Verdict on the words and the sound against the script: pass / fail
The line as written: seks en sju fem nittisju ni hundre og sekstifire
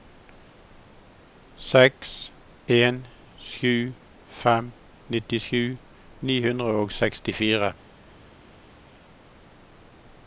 pass